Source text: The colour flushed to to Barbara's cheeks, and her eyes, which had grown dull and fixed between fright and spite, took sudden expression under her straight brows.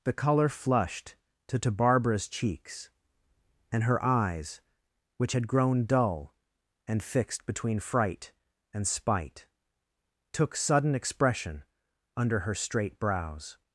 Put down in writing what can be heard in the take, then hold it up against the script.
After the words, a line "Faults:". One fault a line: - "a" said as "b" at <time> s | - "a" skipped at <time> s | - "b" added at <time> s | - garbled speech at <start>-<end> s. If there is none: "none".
The colour flushed to to Barbara's cheeks, and her eyes, which had grown dull and fixed between fright and spite, took sudden expression under her straight brows.
Faults:
none